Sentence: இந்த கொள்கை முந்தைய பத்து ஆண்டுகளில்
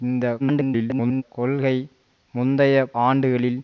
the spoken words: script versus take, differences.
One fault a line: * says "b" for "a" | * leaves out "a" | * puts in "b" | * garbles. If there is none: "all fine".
* garbles
* leaves out "பத்து"